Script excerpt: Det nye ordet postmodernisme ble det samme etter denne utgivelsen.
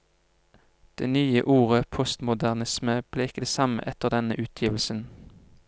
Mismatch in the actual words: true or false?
true